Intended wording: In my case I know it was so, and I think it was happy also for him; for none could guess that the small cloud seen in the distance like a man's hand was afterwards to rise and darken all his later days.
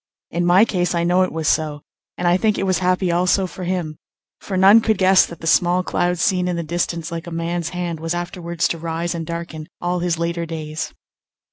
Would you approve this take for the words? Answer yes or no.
yes